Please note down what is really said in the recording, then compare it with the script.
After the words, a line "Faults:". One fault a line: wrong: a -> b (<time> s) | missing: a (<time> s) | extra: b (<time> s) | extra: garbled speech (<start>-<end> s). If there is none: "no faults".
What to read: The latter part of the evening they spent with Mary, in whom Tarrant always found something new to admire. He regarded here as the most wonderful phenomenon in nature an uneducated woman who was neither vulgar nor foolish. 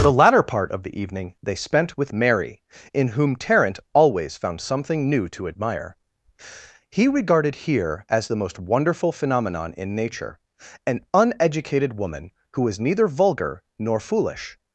The latter part of the evening they spent with Mary, in whom Tarrant always found something new to admire. He regarded here as the most wonderful phenomenon in nature an uneducated woman who was neither vulgar nor foolish.
Faults:
no faults